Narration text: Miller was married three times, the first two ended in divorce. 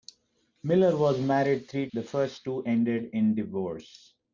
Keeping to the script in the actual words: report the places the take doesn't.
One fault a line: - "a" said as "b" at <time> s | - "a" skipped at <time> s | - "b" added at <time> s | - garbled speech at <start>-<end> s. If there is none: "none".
- "times" skipped at 1.9 s